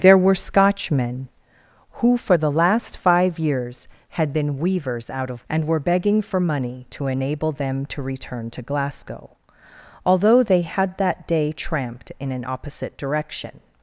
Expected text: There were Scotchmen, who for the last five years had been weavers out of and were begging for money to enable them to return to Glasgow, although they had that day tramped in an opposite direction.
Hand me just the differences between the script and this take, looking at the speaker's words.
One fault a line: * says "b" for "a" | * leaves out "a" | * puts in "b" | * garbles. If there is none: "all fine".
all fine